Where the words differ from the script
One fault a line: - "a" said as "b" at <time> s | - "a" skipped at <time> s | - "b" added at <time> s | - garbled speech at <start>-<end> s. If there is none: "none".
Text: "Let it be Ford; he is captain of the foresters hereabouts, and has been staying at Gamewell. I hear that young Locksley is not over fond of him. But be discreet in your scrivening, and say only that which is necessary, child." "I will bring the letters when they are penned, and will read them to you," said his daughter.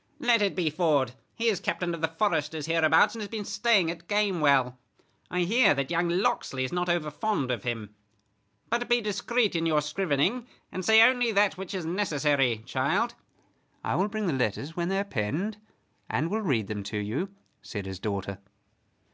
none